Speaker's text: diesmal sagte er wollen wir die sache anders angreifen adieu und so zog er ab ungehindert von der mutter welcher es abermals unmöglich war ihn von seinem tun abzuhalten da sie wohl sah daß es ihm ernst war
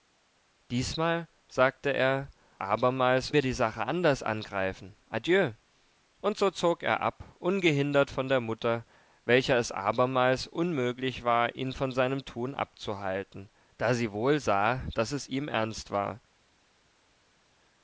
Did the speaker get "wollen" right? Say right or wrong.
wrong